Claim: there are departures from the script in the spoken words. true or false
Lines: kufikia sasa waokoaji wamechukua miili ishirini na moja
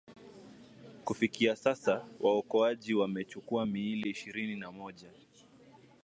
false